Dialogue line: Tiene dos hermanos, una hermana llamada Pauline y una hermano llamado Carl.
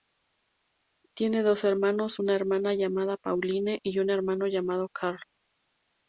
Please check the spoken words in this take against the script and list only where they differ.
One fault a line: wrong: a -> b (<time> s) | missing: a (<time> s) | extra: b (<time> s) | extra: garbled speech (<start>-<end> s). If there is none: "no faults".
wrong: una -> un (4.0 s)